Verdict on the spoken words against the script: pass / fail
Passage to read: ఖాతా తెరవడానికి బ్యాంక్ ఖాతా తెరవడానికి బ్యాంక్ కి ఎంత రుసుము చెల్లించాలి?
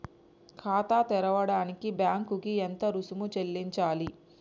fail